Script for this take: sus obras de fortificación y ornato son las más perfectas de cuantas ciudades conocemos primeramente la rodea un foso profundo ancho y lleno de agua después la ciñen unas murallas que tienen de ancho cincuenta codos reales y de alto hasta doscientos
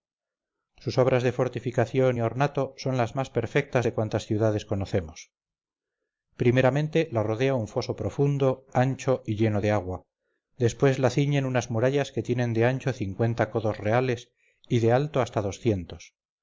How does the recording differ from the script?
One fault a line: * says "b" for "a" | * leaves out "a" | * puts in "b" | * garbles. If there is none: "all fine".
all fine